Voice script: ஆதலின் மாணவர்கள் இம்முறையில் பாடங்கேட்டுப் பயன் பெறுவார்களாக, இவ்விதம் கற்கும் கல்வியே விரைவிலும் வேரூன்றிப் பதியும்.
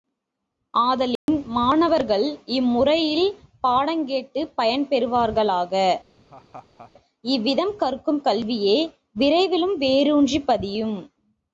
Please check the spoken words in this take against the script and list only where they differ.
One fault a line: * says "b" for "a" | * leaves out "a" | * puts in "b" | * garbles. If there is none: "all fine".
all fine